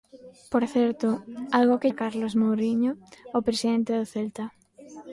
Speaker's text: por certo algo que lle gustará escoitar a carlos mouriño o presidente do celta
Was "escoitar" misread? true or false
true